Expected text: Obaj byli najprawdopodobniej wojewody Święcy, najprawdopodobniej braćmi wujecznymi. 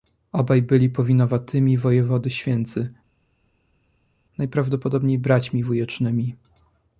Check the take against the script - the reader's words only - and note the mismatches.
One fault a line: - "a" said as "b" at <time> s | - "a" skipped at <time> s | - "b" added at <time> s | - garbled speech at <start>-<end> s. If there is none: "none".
- "najprawdopodobniej" said as "powinowatymi" at 0.9 s